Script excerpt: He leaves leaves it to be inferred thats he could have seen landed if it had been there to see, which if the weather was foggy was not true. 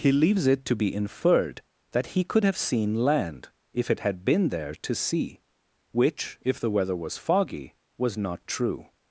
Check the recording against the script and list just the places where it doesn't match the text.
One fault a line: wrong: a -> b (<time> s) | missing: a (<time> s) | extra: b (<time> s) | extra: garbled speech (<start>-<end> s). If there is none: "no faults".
missing: leaves (0.5 s)
wrong: thats -> that (1.9 s)
wrong: landed -> land (3.0 s)